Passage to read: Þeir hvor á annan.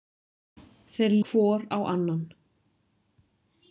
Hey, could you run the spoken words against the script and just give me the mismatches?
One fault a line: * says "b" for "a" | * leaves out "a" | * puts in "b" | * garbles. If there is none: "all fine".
all fine